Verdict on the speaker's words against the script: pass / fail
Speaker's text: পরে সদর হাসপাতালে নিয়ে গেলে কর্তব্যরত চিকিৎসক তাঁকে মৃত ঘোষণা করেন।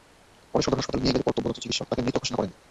pass